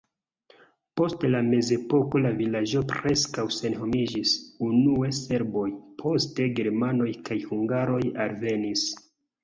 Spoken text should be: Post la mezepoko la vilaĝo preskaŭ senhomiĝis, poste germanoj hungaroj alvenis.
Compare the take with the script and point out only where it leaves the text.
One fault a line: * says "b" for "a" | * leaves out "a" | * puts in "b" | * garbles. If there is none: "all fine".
* puts in "unue serboj"
* puts in "kaj"